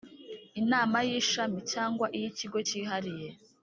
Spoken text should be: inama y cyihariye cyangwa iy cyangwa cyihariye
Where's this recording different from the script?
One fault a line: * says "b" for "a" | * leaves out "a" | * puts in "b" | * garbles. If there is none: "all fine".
* says "ishami" for "cyihariye"
* says "ikigo" for "cyangwa"